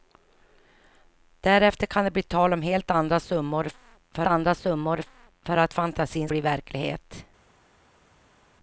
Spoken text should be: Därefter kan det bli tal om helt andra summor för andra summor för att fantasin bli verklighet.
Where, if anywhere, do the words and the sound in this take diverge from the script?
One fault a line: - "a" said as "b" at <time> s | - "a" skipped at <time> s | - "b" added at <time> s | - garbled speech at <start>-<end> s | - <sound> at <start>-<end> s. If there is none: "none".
none